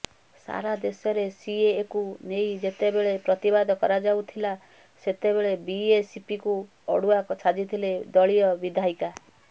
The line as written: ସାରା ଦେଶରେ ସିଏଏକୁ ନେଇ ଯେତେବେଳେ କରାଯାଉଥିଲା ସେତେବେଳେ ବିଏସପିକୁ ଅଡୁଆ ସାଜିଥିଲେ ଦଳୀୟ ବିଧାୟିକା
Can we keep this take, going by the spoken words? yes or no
no